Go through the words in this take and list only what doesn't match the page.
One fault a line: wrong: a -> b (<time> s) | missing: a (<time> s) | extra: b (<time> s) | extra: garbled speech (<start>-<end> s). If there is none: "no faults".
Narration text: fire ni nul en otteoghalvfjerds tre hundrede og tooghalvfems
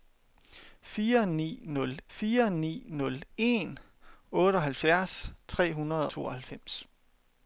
extra: fire ni nul (2.2 s)
missing: og (6.1 s)